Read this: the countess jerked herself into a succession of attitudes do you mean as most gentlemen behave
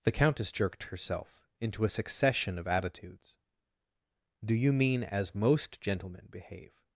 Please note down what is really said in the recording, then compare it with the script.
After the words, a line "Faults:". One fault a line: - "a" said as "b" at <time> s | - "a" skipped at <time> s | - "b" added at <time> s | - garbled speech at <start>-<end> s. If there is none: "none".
the countess jerked herself into a succession of attitudes do you mean as most gentlemen behave
Faults:
none